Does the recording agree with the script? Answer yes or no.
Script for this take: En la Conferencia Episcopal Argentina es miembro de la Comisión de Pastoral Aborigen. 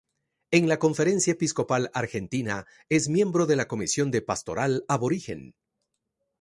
yes